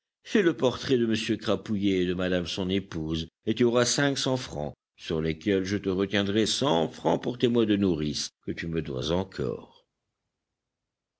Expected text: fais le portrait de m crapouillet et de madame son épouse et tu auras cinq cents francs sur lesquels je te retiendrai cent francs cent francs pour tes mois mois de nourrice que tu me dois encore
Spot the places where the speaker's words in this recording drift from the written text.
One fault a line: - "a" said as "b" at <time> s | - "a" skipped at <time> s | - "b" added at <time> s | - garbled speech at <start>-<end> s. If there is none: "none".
- "cent francs" skipped at 7.2 s
- "mois" skipped at 7.7 s